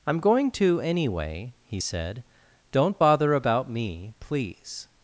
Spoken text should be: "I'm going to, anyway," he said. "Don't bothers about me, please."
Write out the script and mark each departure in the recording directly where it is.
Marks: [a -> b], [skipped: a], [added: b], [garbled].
"I'm going to, anyway," he said. "Don't [bothers -> bother] about me, please."